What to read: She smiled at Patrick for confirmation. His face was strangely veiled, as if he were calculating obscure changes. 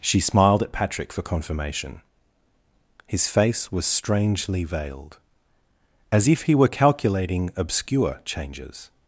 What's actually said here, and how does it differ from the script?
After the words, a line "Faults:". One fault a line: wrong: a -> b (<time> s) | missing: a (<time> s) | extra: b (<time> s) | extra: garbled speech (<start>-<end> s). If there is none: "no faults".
She smiled at Patrick for confirmation. His face was strangely veiled, as if he were calculating obscure changes.
Faults:
no faults